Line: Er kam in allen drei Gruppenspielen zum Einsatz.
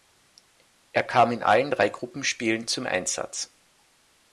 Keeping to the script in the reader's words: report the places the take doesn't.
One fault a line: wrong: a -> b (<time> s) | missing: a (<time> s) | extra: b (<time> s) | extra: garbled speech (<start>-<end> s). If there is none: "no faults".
no faults